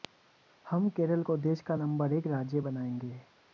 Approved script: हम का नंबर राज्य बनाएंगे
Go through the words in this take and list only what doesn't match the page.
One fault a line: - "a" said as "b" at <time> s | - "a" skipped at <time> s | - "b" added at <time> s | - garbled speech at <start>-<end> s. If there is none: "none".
- "केरल को देश" added at 0.9 s
- "एक" added at 2.1 s